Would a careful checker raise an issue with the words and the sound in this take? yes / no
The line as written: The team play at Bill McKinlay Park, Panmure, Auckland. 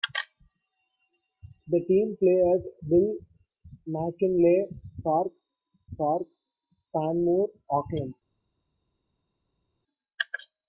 yes